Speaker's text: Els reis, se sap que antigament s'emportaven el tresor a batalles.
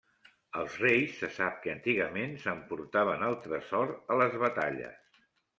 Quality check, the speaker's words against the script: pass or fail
fail